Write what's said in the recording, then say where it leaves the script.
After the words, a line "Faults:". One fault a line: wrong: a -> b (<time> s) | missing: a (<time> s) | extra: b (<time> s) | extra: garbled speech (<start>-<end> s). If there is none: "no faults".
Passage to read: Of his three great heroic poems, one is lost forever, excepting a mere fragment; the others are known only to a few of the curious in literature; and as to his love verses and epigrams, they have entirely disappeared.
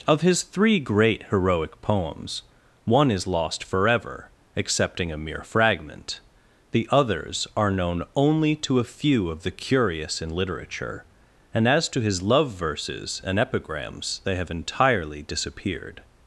Of his three great heroic poems, one is lost forever, excepting a mere fragment; the others are known only to a few of the curious in literature; and as to his love verses and epigrams, they have entirely disappeared.
Faults:
no faults